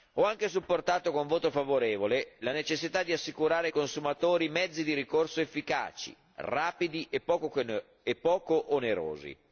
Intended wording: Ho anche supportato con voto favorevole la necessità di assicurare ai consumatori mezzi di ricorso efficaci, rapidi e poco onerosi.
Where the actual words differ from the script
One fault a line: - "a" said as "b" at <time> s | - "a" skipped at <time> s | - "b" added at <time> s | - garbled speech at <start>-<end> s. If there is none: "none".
none